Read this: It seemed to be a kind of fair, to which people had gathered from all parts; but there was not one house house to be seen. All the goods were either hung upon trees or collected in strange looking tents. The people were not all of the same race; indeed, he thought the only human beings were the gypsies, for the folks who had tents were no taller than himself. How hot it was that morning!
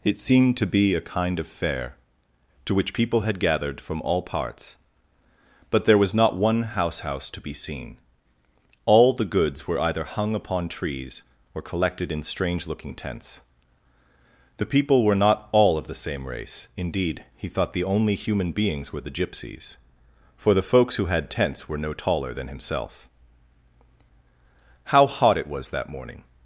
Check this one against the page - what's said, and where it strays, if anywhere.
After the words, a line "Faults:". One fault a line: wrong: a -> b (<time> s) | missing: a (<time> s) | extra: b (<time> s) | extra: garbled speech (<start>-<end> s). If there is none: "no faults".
It seemed to be a kind of fair, to which people had gathered from all parts; but there was not one house house to be seen. All the goods were either hung upon trees or collected in strange looking tents. The people were not all of the same race; indeed, he thought the only human beings were the gypsies, for the folks who had tents were no taller than himself. How hot it was that morning!
Faults:
no faults